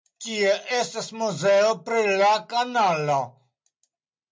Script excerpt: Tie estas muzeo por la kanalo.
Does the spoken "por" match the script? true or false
false